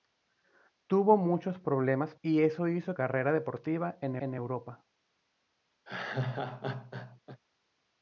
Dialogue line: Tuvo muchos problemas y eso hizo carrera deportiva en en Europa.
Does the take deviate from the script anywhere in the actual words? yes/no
no